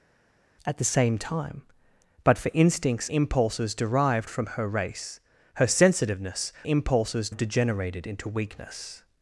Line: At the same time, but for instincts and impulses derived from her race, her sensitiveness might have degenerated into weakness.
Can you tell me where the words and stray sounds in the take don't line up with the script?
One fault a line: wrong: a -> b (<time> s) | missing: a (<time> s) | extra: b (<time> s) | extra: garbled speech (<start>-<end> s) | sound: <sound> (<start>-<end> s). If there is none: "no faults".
missing: and (3.1 s)
wrong: might -> impulses (6.7 s)